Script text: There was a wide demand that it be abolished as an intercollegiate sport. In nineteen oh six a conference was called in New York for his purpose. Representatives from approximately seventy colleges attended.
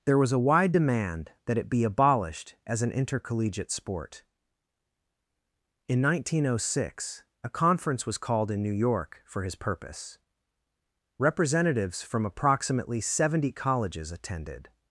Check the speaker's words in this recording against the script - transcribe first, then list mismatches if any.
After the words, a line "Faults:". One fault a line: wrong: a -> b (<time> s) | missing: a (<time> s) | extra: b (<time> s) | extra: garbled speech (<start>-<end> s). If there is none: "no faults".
There was a wide demand that it be abolished as an intercollegiate sport. In nineteen oh six a conference was called in New York for his purpose. Representatives from approximately seventy colleges attended.
Faults:
no faults